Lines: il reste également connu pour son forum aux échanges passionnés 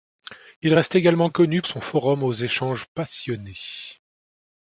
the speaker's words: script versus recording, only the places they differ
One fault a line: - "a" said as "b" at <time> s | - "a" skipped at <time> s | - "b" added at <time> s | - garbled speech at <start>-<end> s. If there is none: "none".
- "pour" skipped at 1.6 s